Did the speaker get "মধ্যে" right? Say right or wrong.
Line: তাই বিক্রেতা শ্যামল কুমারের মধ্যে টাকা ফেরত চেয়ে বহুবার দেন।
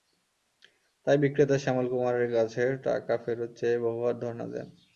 wrong